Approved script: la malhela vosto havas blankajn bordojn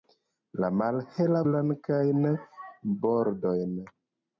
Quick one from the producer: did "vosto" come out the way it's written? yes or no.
no